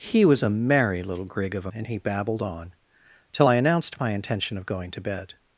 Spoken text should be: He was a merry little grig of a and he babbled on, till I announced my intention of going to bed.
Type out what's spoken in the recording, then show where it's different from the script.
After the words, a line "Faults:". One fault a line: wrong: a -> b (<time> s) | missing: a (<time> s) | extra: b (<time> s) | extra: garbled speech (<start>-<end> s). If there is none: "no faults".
He was a merry little grig of a and he babbled on, till I announced my intention of going to bed.
Faults:
no faults